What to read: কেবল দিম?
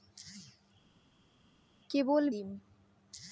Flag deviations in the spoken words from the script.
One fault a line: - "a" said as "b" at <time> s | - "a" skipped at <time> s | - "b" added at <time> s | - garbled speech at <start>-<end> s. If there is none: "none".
none